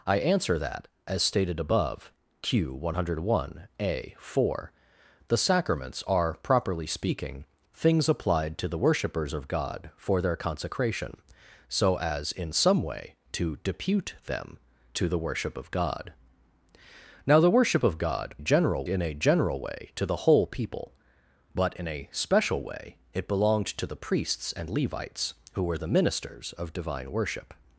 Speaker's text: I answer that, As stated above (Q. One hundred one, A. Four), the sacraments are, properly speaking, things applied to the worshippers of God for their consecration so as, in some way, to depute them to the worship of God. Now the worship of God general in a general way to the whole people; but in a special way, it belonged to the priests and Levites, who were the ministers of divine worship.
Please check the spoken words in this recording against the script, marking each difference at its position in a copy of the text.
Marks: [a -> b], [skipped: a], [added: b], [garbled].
I answer that, As stated above (Q. One hundred one, A. Four), the sacraments are, properly speaking, things applied to the worshippers of God for their consecration so as, in some way, to depute them to the worship of God. Now the worship of God general in a general way to the whole people; but in a special way, it belonged to the priests and Levites, who were the ministers of divine worship.